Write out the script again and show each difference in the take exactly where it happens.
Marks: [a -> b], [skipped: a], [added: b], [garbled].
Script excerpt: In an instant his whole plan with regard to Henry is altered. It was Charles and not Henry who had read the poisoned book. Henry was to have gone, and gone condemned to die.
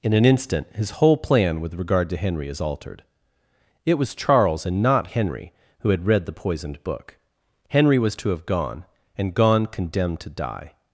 In an instant his whole plan with regard to Henry is altered. It was Charles and not Henry who had read the poisoned book. Henry was to have gone, and gone condemned to die.